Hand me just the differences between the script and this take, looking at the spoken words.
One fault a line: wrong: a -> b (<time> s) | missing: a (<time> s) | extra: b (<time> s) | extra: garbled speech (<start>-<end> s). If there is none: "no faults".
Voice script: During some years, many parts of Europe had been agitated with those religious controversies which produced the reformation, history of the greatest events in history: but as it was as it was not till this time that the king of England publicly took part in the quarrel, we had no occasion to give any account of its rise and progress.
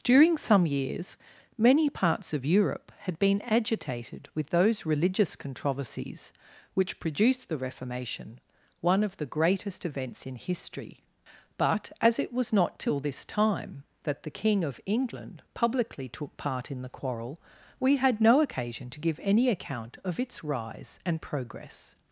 wrong: history -> one (8.8 s)
missing: as it was (12.5 s)